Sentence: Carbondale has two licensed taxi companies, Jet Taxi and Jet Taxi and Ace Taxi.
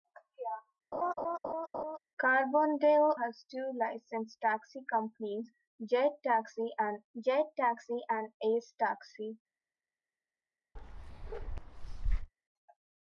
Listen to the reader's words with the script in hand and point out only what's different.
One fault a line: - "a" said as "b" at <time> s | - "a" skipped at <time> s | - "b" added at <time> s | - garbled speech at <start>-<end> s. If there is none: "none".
none